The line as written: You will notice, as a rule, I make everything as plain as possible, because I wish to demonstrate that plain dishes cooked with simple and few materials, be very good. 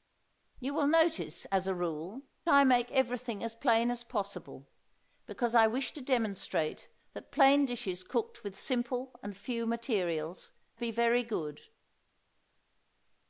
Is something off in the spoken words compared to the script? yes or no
no